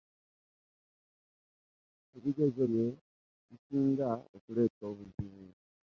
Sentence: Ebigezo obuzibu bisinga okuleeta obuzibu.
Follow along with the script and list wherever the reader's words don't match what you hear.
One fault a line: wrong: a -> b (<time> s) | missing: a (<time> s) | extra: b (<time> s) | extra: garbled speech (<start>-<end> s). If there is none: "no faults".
wrong: obuzibu -> bye (2.7 s)